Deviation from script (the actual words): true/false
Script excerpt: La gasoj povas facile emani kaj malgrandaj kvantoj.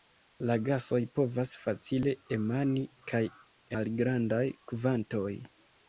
false